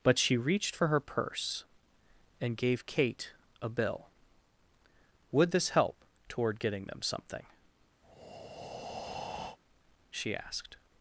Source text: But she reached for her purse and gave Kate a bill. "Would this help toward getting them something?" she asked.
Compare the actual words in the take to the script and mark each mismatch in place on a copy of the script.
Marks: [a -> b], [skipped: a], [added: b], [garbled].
But she reached for her purse and gave Kate a bill. "Would this help toward getting them something?" she asked.